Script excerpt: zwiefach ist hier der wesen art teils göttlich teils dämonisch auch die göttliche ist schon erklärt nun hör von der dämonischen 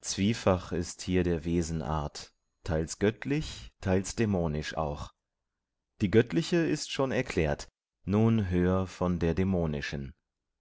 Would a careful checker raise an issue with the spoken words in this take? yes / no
no